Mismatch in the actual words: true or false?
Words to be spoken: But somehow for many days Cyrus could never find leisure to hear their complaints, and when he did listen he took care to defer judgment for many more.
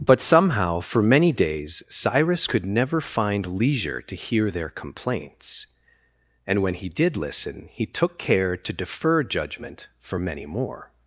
false